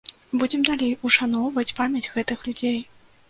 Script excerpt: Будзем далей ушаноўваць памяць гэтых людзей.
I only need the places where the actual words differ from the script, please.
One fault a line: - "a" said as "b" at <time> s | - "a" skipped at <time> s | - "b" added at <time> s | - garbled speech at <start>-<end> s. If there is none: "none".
none